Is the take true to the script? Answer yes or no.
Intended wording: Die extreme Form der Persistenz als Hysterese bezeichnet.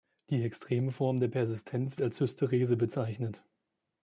yes